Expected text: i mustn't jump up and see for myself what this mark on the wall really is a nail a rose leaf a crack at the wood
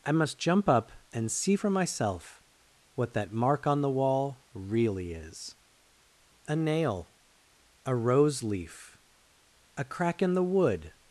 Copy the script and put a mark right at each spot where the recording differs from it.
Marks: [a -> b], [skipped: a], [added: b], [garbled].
i [mustn't -> must] jump up and see for myself what [this -> that] mark on the wall really is a nail a rose leaf a crack [at -> in] the wood